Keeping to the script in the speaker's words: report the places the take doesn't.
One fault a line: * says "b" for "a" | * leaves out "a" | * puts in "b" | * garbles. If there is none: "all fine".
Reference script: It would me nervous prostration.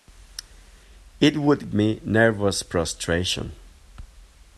all fine